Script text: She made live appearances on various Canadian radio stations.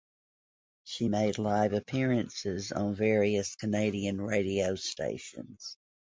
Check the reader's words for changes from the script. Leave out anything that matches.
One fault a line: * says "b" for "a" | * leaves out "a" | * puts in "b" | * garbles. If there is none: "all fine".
all fine